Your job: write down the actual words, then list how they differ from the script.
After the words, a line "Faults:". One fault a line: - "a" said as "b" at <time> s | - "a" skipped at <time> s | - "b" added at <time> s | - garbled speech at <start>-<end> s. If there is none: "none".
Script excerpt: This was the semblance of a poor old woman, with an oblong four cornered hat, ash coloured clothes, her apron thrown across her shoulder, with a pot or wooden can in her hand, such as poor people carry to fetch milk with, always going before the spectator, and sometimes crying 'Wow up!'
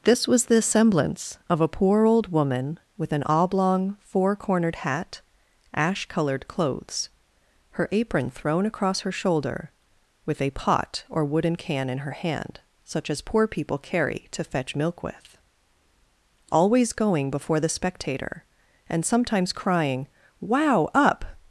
This was the semblance of a poor old woman, with an oblong four cornered hat, ash coloured clothes, her apron thrown across her shoulder, with a pot or wooden can in her hand, such as poor people carry to fetch milk with, always going before the spectator, and sometimes crying 'Wow up!'
Faults:
none